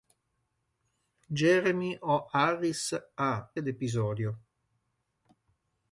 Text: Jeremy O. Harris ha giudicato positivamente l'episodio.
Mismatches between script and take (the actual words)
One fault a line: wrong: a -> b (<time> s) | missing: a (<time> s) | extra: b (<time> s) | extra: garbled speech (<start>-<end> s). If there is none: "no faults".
missing: giudicato positivamente (3.5 s)